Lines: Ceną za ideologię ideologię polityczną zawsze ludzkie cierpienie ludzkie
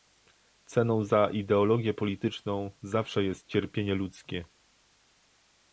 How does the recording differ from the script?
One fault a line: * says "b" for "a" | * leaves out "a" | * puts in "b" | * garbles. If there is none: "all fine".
* leaves out "ideologię"
* says "jest" for "ludzkie"